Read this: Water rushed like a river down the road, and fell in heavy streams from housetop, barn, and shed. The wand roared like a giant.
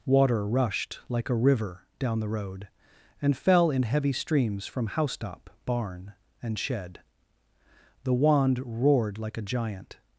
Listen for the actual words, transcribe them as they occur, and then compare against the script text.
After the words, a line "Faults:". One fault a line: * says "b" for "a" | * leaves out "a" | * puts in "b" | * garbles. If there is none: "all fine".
Water rushed like a river down the road, and fell in heavy streams from housetop, barn, and shed. The wand roared like a giant.
Faults:
all fine